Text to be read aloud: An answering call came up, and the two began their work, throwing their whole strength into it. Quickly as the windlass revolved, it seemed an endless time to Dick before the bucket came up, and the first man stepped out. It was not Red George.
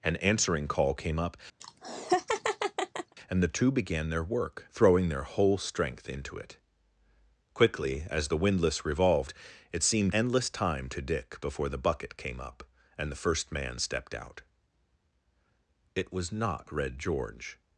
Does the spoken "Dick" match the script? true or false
true